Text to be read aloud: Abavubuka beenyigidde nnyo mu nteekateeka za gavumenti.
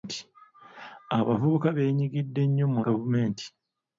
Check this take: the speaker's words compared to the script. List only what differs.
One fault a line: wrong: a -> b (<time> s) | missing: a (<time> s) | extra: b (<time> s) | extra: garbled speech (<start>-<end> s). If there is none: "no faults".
missing: nteekateeka za (2.8 s)